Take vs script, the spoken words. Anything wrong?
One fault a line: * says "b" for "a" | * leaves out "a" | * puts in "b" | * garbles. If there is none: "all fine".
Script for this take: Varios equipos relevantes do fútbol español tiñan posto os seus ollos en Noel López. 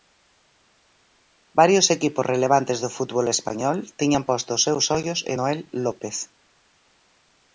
all fine